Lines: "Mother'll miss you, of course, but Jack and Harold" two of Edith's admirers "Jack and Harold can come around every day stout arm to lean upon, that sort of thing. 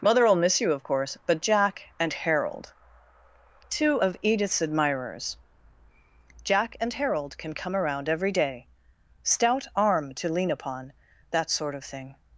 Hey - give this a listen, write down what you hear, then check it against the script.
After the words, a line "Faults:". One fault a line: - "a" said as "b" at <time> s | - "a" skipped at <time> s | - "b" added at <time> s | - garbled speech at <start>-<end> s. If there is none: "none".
"Mother'll miss you, of course, but Jack and Harold" two of Edith's admirers "Jack and Harold can come around every day stout arm to lean upon, that sort of thing.
Faults:
none